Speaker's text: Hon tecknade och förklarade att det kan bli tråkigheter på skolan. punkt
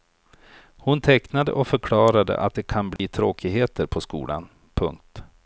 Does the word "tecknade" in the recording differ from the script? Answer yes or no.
no